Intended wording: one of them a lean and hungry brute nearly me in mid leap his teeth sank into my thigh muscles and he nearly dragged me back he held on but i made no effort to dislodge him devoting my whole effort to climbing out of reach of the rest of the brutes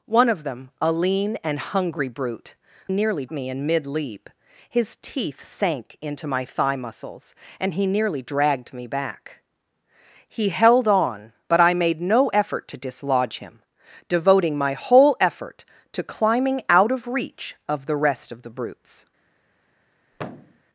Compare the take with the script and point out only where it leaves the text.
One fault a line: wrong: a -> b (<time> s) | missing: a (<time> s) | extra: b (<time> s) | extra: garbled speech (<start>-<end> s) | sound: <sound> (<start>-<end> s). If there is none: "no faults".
sound: thud (20.1-20.6 s)